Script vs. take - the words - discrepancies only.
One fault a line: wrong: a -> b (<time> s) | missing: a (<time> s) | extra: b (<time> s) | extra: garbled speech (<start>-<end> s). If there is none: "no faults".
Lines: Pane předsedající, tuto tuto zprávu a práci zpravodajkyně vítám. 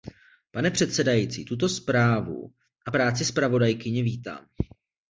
missing: tuto (1.7 s)